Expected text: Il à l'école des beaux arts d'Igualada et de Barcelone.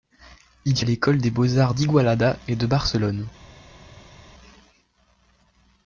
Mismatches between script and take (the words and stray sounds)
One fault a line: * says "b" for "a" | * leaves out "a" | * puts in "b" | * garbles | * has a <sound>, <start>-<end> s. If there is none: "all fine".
all fine